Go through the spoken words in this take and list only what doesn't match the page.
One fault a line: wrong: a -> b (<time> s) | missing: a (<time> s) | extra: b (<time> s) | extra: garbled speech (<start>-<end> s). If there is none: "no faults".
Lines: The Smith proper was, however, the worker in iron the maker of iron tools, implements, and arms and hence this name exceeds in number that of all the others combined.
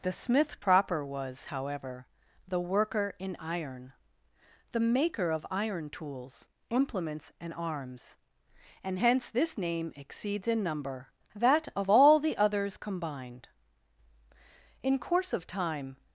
extra: In course of time (14.8 s)